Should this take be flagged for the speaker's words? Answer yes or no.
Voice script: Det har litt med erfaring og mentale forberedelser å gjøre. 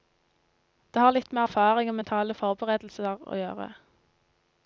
no